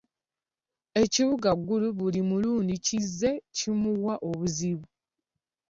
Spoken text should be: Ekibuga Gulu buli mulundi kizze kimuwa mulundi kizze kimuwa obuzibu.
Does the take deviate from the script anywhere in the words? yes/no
yes